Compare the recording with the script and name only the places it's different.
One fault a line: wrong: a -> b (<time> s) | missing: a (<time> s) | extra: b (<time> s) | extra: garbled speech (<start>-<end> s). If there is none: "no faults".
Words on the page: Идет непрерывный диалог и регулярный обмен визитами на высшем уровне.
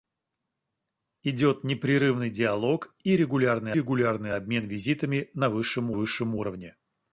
extra: регулярный (3.7 s)
extra: высшем (5.9 s)